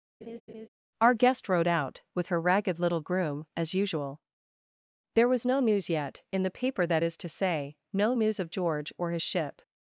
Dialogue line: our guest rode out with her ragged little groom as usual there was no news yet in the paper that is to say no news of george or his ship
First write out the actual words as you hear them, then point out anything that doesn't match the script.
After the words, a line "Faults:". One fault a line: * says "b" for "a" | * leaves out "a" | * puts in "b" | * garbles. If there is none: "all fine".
our guest rode out with her ragged little groom as usual there was no news yet in the paper that is to say no news of george or his ship
Faults:
all fine